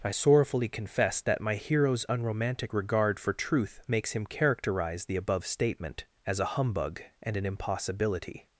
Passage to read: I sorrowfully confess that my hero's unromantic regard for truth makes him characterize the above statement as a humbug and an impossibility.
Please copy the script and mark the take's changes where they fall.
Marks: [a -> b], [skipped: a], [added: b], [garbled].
I sorrowfully confess that my hero's unromantic regard for truth makes him characterize the above statement as a humbug and an impossibility.